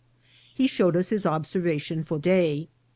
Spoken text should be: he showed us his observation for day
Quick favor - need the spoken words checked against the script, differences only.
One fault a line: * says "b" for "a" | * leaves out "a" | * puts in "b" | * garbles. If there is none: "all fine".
all fine